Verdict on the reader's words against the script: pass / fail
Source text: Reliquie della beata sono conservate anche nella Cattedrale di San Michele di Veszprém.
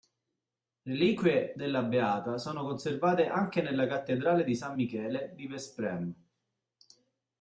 pass